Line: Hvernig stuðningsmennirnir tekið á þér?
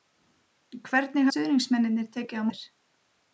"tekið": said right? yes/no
yes